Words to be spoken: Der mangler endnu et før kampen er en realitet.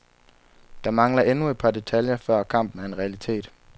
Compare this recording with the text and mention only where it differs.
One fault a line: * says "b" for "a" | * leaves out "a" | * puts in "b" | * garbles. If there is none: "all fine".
* puts in "par detaljer"